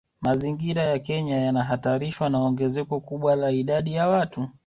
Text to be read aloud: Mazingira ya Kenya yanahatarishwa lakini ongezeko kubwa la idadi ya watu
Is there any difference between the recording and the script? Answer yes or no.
yes